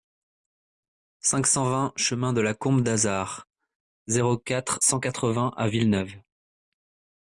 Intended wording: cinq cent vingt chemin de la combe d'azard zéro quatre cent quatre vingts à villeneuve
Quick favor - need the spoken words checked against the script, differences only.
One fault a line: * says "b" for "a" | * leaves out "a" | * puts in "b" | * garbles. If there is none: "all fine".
all fine